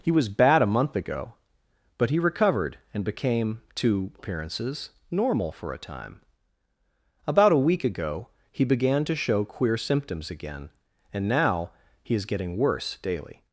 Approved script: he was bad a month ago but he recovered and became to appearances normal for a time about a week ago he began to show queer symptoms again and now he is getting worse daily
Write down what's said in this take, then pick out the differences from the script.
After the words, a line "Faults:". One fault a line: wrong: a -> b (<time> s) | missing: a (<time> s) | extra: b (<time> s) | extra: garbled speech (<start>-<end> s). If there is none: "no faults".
he was bad a month ago but he recovered and became to appearances normal for a time about a week ago he began to show queer symptoms again and now he is getting worse daily
Faults:
no faults